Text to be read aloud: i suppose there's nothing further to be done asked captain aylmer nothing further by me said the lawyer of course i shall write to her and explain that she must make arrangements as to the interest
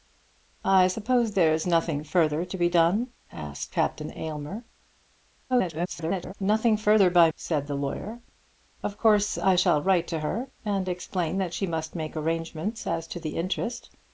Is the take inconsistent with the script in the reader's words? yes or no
yes